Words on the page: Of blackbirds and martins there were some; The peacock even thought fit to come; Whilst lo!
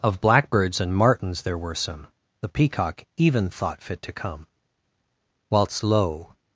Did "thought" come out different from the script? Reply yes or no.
no